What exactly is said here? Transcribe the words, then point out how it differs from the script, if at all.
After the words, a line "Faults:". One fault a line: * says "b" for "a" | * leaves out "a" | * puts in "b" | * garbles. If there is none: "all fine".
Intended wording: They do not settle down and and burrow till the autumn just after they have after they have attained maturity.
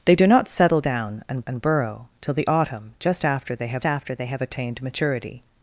They do not settle down and and burrow till the autumn just after they have after they have attained maturity.
Faults:
all fine